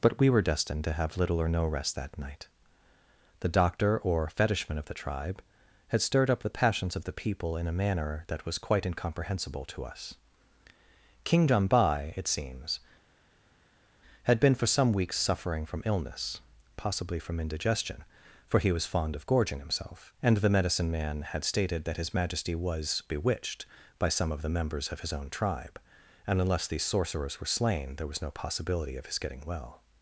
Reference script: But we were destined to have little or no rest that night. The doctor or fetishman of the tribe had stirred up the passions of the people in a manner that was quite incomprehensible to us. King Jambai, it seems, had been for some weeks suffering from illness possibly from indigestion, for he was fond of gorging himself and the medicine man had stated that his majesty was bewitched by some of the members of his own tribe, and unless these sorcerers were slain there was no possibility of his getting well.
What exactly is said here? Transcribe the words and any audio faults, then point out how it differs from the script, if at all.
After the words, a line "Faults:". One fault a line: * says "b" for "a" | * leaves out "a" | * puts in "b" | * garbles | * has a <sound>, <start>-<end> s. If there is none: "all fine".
But we were destined to have little or no rest that night. The doctor or fetishman of the tribe had stirred up the passions of the people in a manner that was quite incomprehensible to us. King Jambai, it seems, had been for some weeks suffering from illness possibly from indigestion, for he was fond of gorging himself and the medicine man had stated that his majesty was bewitched by some of the members of his own tribe, and unless these sorcerers were slain there was no possibility of his getting well.
Faults:
all fine